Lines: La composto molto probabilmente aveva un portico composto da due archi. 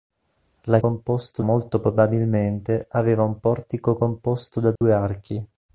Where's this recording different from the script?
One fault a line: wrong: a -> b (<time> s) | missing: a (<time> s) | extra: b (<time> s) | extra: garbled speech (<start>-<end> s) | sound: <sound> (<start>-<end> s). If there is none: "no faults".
sound: dropout (4.8-4.8 s)